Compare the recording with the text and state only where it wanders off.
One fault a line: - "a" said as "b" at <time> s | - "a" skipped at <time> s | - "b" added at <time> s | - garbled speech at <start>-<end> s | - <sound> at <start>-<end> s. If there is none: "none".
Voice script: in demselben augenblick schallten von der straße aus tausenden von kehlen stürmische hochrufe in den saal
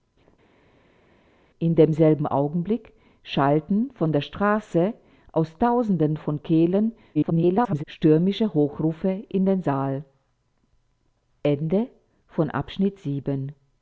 - garbled speech at 7.1-7.8 s